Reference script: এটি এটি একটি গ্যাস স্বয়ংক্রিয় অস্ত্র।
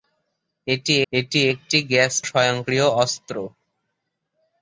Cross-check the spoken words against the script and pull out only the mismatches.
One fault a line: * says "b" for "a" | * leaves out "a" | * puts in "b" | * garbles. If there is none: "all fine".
all fine